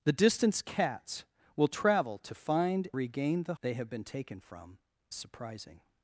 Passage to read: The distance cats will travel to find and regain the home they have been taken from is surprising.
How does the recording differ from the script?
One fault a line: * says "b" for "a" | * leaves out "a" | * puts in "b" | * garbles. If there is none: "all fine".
* leaves out "and"
* leaves out "home"
* leaves out "is"